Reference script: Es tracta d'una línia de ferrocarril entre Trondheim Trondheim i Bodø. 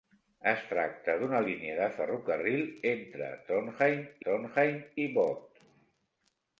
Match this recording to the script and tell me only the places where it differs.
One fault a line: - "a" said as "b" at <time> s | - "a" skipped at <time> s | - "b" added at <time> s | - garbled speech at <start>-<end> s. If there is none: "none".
none